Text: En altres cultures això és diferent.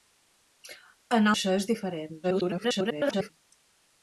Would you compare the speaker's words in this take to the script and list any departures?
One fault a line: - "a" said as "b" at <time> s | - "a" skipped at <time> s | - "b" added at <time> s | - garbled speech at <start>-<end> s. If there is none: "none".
- "altres cultures" skipped at 1.3 s
- garbled speech at 2.2-3.3 s